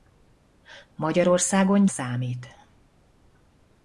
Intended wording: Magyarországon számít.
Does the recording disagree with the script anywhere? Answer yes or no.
no